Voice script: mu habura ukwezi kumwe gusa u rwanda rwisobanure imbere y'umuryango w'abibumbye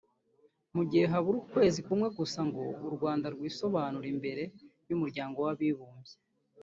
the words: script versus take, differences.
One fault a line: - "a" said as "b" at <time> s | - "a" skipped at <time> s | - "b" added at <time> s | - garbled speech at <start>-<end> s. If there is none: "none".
- "gihe" added at 0.9 s
- "ngo" added at 2.5 s